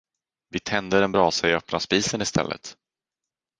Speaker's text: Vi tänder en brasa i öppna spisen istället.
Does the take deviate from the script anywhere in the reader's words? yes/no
no